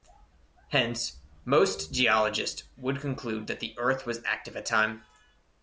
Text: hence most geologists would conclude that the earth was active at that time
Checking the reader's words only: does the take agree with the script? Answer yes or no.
no